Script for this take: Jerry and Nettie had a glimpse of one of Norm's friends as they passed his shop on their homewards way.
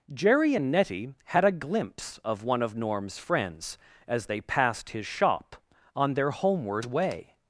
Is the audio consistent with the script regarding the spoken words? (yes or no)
no